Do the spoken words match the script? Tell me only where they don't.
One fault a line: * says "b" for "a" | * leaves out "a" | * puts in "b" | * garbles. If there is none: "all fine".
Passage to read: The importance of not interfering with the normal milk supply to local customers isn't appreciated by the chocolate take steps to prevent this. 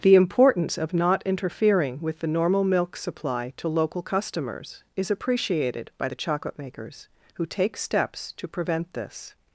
* says "is" for "isn't"
* puts in "makers who"